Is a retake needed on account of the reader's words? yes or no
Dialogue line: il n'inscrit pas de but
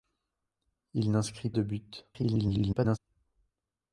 yes